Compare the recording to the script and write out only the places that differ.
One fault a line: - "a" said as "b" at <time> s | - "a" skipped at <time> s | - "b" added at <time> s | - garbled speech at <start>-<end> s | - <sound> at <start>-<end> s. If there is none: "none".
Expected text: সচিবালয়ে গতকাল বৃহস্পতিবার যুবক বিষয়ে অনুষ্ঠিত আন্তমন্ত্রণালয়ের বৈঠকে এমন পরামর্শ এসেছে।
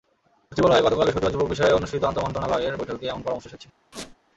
- squeak at 3.9-4.2 s